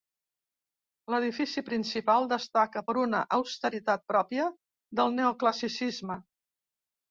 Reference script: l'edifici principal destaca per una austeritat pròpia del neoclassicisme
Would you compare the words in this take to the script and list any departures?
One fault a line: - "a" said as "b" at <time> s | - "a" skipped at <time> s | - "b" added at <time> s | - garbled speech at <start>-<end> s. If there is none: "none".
none